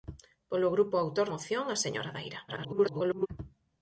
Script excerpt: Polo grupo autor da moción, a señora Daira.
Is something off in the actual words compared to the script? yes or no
yes